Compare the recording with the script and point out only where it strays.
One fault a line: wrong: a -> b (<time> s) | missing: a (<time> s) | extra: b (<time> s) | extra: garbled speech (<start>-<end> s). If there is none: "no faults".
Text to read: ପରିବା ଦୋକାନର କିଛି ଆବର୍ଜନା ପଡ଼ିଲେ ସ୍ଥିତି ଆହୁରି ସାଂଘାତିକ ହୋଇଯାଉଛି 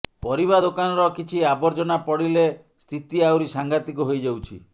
no faults